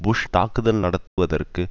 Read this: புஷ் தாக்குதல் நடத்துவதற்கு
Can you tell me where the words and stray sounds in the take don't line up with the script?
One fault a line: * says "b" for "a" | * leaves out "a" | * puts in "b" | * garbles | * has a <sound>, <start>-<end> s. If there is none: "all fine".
* has a dropout, 1.1-1.2 s